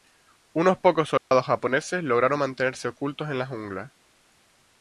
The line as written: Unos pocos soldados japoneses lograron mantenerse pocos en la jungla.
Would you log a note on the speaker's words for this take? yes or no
yes